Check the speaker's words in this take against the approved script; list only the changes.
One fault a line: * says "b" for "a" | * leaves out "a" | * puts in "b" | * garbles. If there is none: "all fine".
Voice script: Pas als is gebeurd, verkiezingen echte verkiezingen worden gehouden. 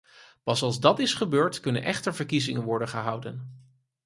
* puts in "dat"
* says "kunnen" for "verkiezingen"